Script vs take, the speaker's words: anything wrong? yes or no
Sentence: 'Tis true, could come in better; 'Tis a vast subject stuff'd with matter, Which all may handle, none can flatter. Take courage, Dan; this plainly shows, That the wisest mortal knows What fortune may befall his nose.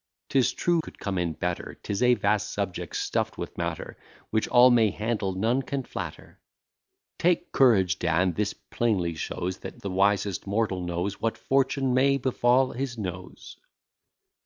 no